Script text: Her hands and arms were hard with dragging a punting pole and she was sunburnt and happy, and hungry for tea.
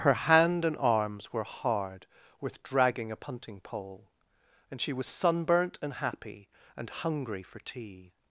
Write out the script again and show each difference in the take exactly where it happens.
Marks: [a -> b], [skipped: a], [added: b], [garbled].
Her [hands -> hand] and arms were hard with dragging a punting pole and she was sunburnt and happy, and hungry for tea.